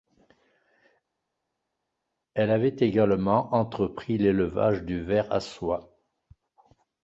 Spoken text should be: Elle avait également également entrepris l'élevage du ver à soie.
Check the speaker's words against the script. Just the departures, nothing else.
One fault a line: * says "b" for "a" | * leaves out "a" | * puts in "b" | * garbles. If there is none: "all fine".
* leaves out "également"